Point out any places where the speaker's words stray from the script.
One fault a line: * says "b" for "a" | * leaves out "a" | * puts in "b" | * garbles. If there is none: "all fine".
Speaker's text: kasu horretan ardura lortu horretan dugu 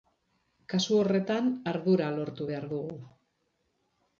* says "behar" for "horretan"